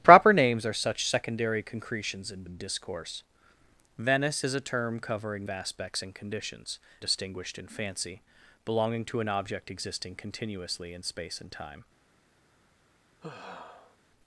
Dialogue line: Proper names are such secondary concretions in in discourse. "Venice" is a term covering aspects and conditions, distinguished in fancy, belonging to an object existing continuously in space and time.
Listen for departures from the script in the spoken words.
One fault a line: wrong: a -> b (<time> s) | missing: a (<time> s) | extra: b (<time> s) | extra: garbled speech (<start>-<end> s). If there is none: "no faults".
no faults